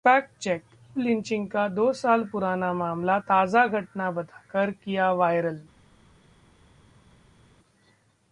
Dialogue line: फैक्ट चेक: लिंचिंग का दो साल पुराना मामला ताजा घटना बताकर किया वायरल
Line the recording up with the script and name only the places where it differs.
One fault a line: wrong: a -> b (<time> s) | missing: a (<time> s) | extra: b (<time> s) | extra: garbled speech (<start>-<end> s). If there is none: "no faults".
no faults